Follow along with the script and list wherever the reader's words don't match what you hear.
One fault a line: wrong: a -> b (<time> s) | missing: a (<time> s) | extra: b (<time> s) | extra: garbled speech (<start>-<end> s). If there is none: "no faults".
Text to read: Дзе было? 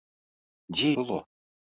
no faults